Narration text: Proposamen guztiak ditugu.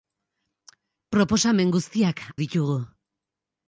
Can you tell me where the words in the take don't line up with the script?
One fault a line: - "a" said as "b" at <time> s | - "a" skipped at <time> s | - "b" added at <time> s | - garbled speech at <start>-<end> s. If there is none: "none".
none